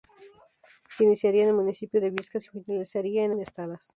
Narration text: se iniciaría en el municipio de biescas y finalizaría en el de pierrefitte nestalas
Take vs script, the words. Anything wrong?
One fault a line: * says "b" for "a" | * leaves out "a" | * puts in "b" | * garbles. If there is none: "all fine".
* leaves out "el de pierrefitte"